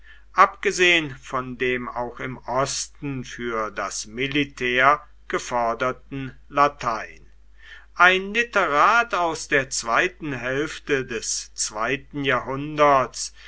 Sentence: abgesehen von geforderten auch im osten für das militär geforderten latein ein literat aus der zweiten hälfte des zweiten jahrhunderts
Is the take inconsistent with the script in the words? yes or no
yes